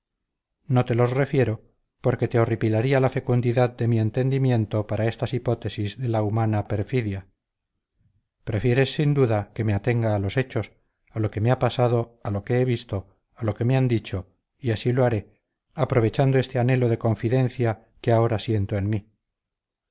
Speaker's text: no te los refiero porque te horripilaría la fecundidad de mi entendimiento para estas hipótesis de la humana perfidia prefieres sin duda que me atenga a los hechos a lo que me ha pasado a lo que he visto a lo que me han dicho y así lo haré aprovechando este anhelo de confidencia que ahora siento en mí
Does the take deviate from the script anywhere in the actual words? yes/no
no